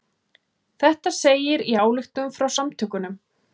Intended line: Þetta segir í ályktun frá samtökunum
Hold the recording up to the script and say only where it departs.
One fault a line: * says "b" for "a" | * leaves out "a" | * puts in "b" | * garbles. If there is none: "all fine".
all fine